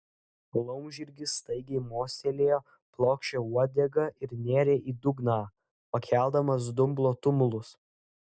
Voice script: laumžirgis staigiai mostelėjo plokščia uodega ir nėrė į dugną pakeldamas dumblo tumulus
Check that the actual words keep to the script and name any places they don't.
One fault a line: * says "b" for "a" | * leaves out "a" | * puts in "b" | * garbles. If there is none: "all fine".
all fine